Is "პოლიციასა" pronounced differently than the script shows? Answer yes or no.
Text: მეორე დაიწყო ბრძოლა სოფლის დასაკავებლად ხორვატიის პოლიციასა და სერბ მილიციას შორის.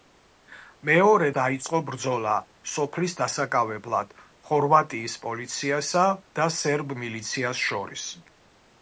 no